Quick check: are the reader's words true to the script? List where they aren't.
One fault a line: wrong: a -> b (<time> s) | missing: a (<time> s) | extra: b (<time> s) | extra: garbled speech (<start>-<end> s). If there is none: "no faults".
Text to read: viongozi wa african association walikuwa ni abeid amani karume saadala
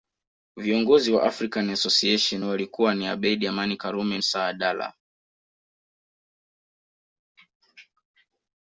no faults